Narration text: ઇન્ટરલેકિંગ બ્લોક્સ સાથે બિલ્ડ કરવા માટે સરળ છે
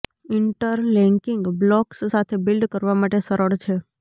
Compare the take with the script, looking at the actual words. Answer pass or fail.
pass